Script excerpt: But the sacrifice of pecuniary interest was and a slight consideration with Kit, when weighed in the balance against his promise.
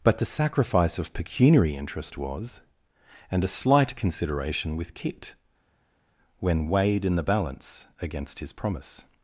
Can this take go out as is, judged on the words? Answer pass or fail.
pass